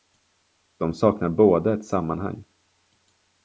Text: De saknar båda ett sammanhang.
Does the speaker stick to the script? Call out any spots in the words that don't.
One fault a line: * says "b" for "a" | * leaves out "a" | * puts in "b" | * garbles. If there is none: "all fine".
all fine